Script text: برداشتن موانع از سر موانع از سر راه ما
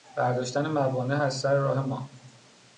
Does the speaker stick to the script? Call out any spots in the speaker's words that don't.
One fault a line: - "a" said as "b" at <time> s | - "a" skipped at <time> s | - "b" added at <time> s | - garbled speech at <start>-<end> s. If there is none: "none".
- "موانع از سر" skipped at 1.5 s